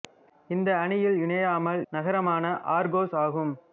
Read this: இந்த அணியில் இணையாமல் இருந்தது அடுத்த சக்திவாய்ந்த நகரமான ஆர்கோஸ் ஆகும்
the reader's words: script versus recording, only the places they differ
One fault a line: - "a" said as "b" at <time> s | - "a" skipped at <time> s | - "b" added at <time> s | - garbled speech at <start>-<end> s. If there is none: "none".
- "இருந்தது அடுத்த சக்திவாய்ந்த" skipped at 1.8 s